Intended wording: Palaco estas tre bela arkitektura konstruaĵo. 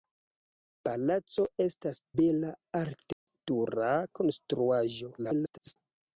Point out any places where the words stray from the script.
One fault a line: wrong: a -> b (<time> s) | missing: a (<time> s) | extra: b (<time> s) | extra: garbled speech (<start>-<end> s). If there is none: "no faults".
missing: tre (2.0 s)
extra: garbled speech (5.2-5.8 s)